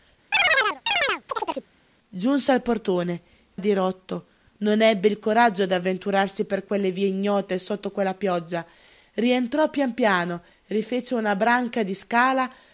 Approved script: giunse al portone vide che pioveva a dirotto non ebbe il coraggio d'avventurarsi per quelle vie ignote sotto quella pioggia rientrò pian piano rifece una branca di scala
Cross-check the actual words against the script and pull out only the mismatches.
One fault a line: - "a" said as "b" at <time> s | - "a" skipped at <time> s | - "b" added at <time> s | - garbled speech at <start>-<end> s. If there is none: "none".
- "vide che pioveva" skipped at 3.2 s